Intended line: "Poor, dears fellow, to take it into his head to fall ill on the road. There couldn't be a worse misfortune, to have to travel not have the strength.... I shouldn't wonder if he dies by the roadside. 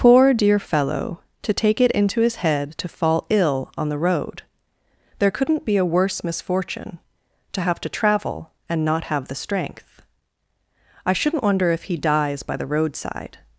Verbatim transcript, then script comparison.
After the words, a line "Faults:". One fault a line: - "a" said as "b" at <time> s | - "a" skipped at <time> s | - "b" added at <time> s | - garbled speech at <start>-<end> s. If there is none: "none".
"Poor, dear fellow, to take it into his head to fall ill on the road. There couldn't be a worse misfortune, to have to travel and not have the strength.... I shouldn't wonder if he dies by the roadside.
Faults:
- "dears" said as "dear" at 0.3 s
- "and" added at 8.7 s